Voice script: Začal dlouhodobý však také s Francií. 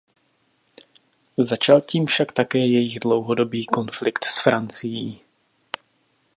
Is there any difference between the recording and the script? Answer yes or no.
yes